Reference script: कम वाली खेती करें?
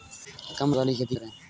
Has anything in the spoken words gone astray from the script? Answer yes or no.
no